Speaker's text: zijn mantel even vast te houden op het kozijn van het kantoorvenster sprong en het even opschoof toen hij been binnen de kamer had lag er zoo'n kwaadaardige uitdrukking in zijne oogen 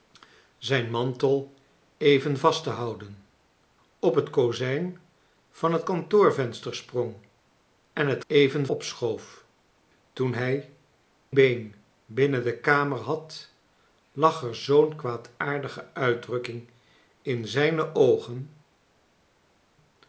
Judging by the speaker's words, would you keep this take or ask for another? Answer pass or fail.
pass